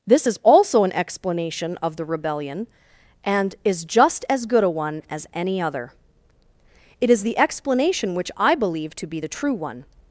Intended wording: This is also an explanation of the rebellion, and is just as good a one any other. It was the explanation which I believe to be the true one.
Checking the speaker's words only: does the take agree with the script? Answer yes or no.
no